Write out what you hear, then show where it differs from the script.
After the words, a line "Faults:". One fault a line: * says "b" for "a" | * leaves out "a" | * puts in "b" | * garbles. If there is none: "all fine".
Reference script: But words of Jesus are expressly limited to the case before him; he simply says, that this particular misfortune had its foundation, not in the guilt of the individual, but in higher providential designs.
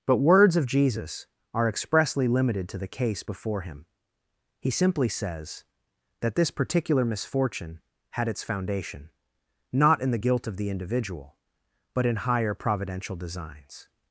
But words of Jesus are expressly limited to the case before him; he simply says, that this particular misfortune had its foundation, not in the guilt of the individual, but in higher providential designs.
Faults:
all fine